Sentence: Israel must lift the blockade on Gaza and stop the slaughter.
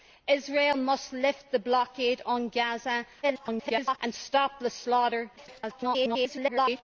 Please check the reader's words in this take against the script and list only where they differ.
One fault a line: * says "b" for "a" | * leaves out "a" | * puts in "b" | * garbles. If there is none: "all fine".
* garbles
* garbles